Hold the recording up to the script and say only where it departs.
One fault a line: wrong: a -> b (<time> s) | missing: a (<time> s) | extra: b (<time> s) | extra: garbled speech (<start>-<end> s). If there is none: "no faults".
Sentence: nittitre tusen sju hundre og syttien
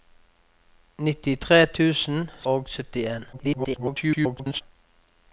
missing: sju hundre (2.2 s)
extra: garbled speech (3.3-4.6 s)